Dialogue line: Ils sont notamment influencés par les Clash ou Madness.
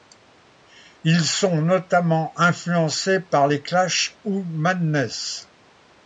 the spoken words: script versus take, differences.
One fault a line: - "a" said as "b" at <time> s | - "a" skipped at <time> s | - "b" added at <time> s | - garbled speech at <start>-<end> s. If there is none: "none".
none